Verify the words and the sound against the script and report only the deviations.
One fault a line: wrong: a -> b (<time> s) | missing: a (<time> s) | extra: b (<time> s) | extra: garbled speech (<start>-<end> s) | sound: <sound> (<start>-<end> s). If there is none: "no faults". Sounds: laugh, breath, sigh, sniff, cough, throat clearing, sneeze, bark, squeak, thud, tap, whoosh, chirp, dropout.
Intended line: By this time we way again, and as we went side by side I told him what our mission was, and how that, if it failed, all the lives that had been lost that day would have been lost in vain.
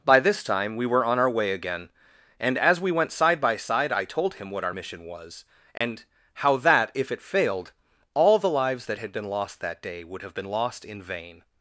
extra: were on our (0.8 s)
sound: dropout (5.8-5.8 s)